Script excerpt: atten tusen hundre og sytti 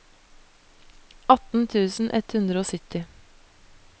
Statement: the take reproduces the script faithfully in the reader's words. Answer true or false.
false